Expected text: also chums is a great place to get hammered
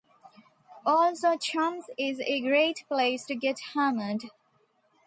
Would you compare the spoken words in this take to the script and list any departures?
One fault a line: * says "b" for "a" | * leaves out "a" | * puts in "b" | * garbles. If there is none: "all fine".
all fine